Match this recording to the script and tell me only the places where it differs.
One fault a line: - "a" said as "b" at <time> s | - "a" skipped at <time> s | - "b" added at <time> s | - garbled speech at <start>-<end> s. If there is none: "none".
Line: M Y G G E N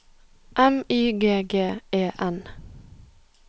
none